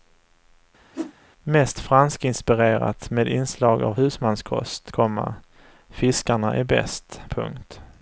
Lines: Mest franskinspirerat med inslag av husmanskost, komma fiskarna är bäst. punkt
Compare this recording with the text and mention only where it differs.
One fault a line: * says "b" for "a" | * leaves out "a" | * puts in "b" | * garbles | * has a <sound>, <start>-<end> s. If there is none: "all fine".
* has a whoosh, 0.9-1.1 s